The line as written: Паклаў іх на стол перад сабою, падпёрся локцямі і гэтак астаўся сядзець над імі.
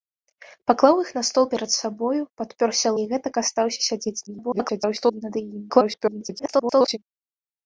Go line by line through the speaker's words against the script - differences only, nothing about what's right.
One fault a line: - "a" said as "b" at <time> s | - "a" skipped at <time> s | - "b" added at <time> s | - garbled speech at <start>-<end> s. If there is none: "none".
- "локцямі" skipped at 2.9 s
- garbled speech at 4.3-5.2 s
- garbled speech at 5.7-7.0 s